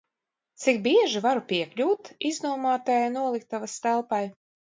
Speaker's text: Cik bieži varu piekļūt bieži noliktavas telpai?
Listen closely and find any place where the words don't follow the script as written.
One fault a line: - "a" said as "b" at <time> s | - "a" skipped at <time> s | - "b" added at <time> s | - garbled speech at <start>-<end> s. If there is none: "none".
- "bieži" said as "iznomātajai" at 2.3 s